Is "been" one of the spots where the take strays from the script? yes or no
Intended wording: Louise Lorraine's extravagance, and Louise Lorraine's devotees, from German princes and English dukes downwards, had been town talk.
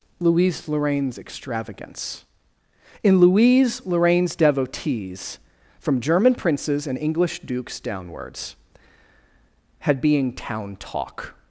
yes